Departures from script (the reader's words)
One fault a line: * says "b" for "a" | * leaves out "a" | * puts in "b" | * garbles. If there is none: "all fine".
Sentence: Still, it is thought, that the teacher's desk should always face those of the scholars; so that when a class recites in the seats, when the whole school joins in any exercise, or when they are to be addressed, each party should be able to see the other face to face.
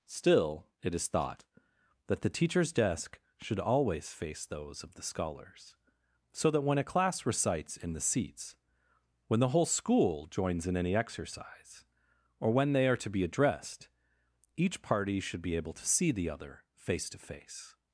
all fine